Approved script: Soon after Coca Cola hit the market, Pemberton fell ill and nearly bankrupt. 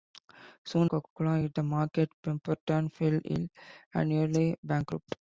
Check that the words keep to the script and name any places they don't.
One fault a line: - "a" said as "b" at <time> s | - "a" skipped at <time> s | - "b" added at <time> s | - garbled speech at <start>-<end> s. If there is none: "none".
- "after" skipped at 0.9 s